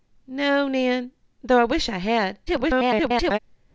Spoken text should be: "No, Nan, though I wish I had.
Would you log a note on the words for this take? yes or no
yes